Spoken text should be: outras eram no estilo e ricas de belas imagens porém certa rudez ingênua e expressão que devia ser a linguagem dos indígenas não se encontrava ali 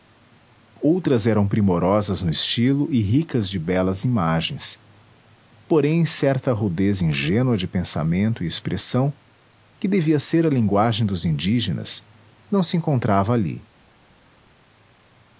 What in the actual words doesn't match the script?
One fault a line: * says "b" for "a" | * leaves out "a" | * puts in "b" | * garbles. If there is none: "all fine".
* puts in "primorosas"
* puts in "de pensamento"